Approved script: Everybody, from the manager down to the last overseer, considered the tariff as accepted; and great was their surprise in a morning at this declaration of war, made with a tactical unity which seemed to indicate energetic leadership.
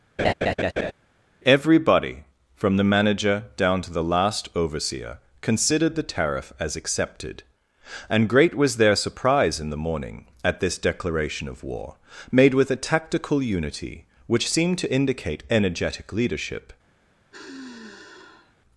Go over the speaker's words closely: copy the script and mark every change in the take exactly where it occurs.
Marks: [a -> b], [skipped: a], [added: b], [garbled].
Everybody, from the manager down to the last overseer, considered the tariff as accepted; and great was their surprise in [a -> the] morning at this declaration of war, made with a tactical unity which seemed to indicate energetic leadership.